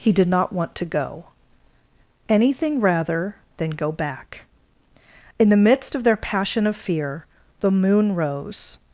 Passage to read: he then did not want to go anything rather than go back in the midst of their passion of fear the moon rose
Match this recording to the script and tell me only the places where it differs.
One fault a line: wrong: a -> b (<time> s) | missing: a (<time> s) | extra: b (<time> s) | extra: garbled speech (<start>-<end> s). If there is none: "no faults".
missing: then (0.1 s)